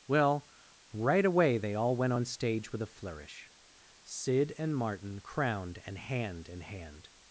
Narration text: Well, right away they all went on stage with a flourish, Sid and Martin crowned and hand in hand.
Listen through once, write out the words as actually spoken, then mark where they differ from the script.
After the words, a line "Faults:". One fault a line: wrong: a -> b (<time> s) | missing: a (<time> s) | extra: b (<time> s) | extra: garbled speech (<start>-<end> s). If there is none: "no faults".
Well, right away they all went on stage with a flourish, Sid and Martin crowned and hand in hand.
Faults:
no faults